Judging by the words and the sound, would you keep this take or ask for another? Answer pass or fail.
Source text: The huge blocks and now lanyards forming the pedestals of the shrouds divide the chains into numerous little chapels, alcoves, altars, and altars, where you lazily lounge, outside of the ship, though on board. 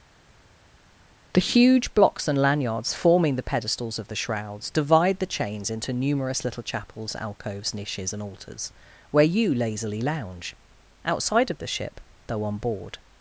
fail